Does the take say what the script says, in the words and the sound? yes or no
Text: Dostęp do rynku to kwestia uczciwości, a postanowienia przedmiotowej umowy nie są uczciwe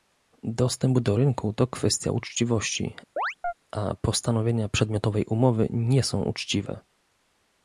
no